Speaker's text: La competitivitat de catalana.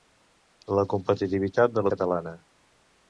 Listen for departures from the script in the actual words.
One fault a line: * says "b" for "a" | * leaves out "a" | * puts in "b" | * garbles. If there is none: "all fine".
all fine